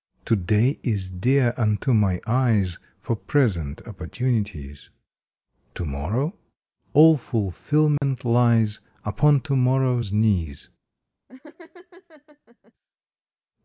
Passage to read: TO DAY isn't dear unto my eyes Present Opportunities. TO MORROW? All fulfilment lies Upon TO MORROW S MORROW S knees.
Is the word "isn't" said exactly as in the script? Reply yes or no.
no